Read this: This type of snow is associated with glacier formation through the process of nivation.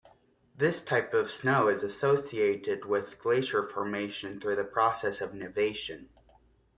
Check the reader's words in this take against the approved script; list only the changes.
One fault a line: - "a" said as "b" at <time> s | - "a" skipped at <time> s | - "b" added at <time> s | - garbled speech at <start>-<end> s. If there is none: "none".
none